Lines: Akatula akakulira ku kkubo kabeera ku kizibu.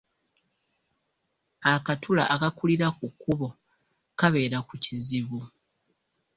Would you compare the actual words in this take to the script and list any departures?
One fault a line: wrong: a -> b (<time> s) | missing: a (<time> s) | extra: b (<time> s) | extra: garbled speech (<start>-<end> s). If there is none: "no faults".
no faults